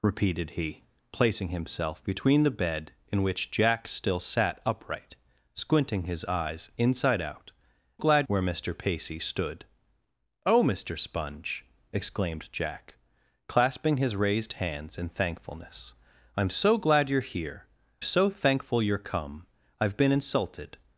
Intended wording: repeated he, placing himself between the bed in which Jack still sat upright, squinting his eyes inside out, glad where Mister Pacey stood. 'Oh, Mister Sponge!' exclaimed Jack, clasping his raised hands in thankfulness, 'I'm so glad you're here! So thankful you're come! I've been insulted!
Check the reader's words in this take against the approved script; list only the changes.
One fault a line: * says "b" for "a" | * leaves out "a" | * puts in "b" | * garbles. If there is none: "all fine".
all fine